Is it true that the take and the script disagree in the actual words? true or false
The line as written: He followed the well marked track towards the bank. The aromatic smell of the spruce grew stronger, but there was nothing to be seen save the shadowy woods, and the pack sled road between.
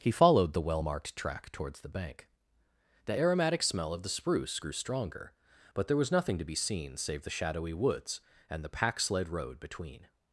false